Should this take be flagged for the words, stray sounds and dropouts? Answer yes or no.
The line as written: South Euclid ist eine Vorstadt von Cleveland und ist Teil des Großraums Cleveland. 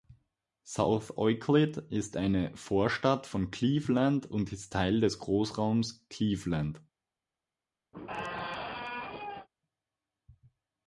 yes